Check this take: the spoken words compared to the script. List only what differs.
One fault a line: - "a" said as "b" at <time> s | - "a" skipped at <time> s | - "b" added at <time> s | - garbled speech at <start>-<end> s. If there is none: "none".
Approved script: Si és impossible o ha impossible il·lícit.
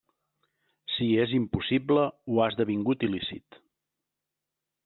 - "impossible" said as "esdevingut" at 2.5 s